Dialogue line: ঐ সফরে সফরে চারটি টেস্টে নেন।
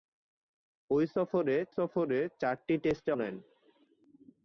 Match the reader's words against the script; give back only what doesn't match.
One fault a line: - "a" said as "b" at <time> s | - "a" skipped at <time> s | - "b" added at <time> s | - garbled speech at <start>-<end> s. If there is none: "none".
none